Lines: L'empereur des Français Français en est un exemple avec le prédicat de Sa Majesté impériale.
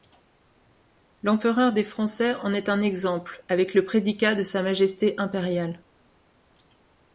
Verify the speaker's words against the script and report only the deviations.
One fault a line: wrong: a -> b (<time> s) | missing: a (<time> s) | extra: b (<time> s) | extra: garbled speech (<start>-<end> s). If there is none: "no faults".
missing: Français (2.3 s)